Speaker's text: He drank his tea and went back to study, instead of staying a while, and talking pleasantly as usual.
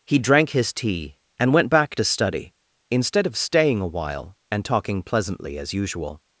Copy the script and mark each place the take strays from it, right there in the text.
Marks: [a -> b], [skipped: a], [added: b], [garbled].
He drank his tea and went back to study, instead of staying a while, and talking pleasantly as usual.